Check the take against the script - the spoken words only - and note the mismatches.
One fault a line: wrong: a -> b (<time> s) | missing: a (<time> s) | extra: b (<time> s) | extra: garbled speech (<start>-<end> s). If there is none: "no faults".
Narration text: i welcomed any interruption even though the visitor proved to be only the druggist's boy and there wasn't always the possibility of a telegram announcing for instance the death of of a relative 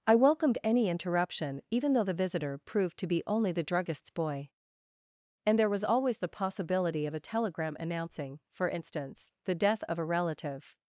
wrong: wasn't -> was (5.7 s)
missing: of (10.0 s)